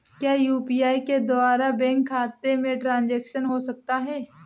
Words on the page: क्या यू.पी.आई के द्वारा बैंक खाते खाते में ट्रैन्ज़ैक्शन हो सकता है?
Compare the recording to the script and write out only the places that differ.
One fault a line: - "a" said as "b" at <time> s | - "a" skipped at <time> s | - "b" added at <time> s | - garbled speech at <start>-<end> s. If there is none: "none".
- "खाते" skipped at 2.5 s